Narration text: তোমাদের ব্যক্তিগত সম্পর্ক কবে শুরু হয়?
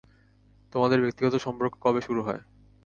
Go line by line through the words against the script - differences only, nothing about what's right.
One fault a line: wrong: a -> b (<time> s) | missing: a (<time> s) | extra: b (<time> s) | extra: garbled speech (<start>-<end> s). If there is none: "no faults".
no faults